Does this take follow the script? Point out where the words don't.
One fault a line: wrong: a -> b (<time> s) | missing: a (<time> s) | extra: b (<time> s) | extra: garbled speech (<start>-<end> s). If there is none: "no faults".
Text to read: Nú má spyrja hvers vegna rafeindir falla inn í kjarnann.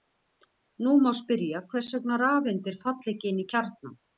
extra: ekki (3.2 s)